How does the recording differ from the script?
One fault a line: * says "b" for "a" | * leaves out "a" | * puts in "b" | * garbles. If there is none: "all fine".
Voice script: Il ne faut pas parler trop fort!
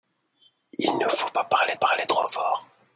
* puts in "parler"